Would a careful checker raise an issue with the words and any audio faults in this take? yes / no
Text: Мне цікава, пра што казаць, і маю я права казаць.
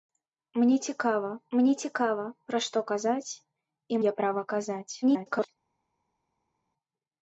yes